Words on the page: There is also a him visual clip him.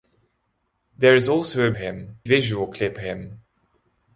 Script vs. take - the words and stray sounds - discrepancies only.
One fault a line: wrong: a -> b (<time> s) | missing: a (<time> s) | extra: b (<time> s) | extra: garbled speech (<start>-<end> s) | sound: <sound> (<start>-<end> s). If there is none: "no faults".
no faults